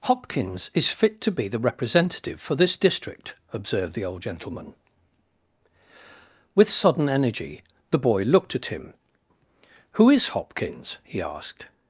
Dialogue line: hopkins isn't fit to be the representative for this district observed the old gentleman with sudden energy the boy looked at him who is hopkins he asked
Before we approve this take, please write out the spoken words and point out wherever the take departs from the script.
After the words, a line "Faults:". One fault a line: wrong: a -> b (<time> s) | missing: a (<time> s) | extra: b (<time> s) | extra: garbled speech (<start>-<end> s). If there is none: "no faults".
hopkins is fit to be the representative for this district observed the old gentleman with sudden energy the boy looked at him who is hopkins he asked
Faults:
wrong: isn't -> is (0.7 s)